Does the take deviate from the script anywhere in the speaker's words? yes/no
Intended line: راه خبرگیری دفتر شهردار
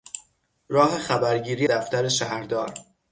no